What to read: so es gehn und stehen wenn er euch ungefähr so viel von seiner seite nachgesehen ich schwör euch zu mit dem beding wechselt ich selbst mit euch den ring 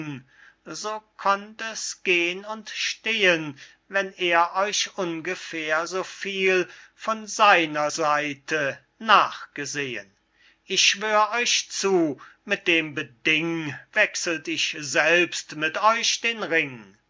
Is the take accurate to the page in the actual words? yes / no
no